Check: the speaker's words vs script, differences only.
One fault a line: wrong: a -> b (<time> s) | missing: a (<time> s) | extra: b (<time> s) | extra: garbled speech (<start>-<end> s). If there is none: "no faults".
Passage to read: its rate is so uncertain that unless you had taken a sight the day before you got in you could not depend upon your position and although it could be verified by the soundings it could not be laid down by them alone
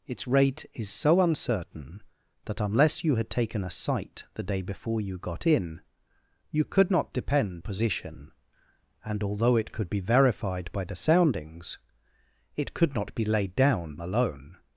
missing: upon your (7.6 s)
missing: by them (14.0 s)